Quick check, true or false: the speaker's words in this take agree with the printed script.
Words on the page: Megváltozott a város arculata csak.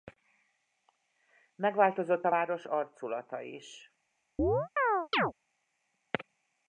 false